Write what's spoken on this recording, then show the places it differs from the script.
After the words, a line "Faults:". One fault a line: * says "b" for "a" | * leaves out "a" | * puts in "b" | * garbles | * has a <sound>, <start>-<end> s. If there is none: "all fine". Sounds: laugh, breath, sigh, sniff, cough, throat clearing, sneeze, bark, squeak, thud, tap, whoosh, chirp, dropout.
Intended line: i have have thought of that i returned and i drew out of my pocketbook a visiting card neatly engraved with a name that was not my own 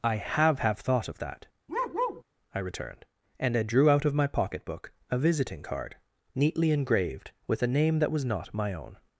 i have have thought of that i returned and i drew out of my pocketbook a visiting card neatly engraved with a name that was not my own
Faults:
* has a bark, 1.7-2.2 s